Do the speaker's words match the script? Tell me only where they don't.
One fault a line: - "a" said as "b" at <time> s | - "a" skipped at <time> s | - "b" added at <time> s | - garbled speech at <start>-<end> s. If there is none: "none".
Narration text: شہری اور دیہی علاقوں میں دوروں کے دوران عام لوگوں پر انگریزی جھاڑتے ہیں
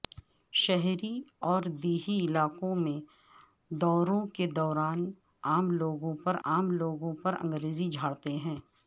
- "عام لوگوں پر" added at 6.5 s